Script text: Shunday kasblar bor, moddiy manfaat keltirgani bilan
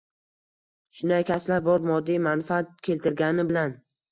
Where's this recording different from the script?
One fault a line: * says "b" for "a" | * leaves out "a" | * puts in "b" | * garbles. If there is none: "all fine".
all fine